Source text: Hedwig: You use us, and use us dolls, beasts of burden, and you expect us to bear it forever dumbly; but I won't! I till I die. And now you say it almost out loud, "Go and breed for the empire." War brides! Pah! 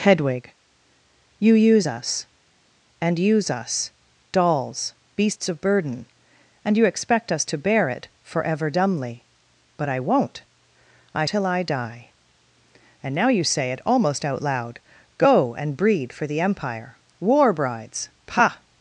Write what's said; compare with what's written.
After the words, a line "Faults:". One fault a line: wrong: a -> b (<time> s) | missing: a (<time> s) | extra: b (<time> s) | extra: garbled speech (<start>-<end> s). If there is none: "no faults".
Hedwig: You use us, and use us dolls, beasts of burden, and you expect us to bear it forever dumbly; but I won't! I till I die. And now you say it almost out loud, "Go and breed for the empire." War brides! Pah!
Faults:
no faults